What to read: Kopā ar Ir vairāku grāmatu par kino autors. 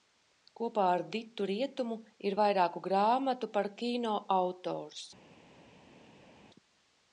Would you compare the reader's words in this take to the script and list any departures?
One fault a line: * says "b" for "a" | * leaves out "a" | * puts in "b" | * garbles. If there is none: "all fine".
* puts in "Ditu Rietumu"